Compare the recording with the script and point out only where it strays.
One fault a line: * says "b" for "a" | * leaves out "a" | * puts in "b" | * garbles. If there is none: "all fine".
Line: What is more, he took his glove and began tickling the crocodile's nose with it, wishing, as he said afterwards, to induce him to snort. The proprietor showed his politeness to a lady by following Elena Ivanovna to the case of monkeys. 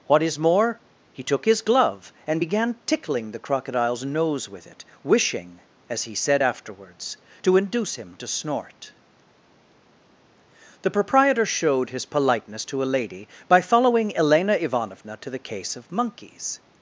all fine